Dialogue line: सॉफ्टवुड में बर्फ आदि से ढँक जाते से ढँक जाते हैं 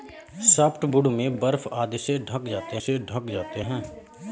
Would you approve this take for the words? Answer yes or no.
yes